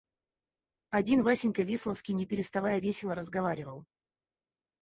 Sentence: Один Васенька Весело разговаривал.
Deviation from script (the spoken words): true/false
true